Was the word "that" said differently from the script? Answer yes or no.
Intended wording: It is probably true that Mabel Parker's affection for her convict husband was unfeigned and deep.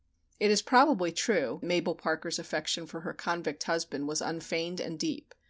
yes